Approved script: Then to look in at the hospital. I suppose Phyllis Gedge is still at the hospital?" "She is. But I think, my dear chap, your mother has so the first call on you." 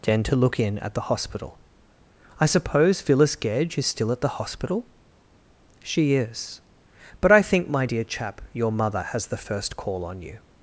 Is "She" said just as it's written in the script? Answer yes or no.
yes